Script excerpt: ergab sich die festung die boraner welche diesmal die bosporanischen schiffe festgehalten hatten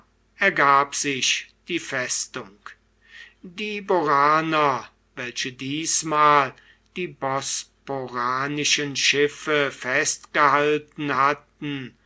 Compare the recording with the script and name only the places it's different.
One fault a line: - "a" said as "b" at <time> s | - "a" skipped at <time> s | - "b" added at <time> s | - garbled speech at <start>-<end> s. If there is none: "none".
none